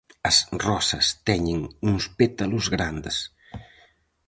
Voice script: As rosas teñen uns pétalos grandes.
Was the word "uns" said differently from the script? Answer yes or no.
no